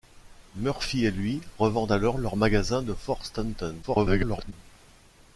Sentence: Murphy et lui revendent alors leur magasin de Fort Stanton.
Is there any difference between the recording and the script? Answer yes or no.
yes